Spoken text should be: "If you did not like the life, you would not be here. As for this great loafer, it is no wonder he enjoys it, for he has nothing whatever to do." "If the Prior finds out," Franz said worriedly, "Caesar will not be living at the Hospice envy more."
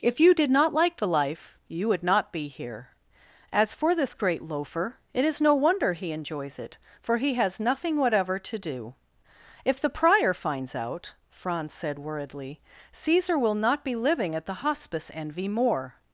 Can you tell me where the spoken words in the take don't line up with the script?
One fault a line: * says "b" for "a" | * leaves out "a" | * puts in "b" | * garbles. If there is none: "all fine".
all fine